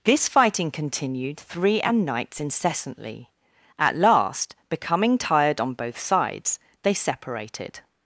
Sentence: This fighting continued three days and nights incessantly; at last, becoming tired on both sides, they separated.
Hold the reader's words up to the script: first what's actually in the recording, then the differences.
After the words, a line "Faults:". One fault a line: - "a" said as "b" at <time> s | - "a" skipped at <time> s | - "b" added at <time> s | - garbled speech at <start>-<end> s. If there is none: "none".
This fighting continued three and nights incessantly; at last, becoming tired on both sides, they separated.
Faults:
- "days" skipped at 1.8 s